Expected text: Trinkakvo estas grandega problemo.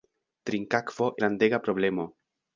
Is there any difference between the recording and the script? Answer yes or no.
yes